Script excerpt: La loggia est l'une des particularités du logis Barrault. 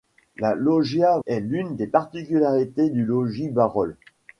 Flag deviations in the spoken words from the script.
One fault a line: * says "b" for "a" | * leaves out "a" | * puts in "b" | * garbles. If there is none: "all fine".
all fine